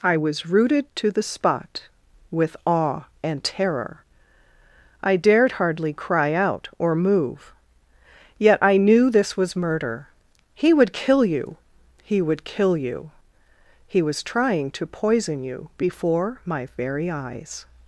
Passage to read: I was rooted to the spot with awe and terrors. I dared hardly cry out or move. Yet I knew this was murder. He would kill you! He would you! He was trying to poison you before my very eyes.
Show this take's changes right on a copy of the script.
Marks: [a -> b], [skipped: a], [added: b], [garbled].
I was rooted to the spot with awe and [terrors. -> terror] I dared hardly cry out or move. Yet I knew this was murder. He would kill you! He would [added: kill] you! He was trying to poison you before my very eyes.